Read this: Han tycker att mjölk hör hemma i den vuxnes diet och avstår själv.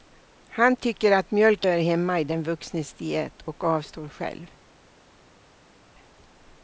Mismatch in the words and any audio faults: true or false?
false